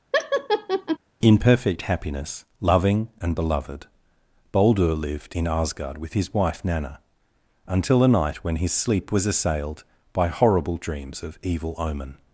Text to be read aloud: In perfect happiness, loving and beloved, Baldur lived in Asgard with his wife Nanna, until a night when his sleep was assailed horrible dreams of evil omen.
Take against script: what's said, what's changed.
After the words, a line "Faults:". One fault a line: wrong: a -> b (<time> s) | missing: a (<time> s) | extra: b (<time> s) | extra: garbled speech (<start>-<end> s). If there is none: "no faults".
In perfect happiness, loving and beloved, Baldur lived in Asgard with his wife Nanna, until a night when his sleep was assailed by horrible dreams of evil omen.
Faults:
extra: by (10.1 s)